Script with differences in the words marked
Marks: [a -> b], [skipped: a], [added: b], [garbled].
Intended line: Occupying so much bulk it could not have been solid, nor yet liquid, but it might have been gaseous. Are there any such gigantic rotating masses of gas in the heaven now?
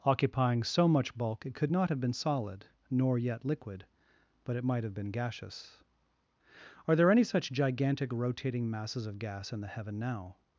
Occupying so much bulk it could not have been solid, nor yet liquid, but it might have been gaseous. Are there any such gigantic rotating masses of gas in the heaven now?